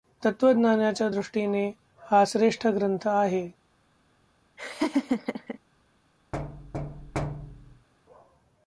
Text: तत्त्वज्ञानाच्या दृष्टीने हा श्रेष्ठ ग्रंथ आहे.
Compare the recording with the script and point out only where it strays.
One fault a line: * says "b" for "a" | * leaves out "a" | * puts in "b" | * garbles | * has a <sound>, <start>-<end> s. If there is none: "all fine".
* has a laugh, 4.6-5.6 s
* has a thud, 6.3-7.9 s